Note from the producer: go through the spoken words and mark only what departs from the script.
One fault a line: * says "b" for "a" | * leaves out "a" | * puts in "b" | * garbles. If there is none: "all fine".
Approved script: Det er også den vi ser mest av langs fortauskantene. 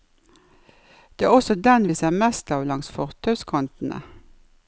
all fine